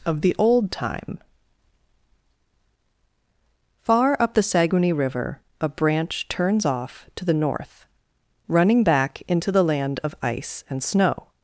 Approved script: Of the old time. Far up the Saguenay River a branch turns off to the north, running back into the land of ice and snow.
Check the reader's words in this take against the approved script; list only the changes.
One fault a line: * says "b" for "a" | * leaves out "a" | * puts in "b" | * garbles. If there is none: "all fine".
all fine